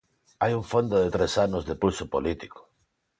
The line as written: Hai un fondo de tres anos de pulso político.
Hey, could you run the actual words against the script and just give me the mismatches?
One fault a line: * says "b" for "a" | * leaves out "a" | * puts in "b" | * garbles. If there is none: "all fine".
all fine